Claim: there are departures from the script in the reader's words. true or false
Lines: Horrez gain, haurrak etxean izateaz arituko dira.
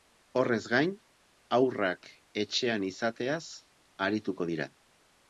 false